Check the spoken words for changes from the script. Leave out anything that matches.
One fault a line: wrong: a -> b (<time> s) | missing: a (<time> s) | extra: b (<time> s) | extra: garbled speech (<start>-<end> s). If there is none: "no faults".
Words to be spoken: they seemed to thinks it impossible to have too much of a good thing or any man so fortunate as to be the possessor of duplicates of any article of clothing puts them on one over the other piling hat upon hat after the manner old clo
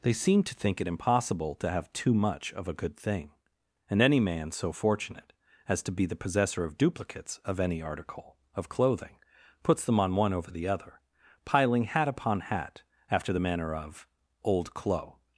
wrong: thinks -> think (0.6 s)
wrong: or -> and (3.9 s)
extra: of (13.7 s)